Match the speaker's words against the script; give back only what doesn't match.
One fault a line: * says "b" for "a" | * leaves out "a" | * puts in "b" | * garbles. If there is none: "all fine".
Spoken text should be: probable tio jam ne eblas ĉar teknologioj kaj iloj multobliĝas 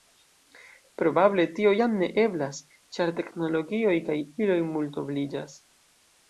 all fine